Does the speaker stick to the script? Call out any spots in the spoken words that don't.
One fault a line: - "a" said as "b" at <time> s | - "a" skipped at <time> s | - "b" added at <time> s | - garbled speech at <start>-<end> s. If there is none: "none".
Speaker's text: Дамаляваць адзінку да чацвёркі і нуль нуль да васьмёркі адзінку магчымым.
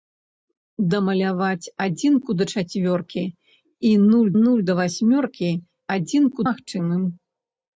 none